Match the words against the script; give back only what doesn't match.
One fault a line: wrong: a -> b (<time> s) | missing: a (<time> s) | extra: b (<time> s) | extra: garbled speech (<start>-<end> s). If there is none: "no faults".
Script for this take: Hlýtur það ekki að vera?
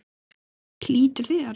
missing: það ekki að (1.3 s)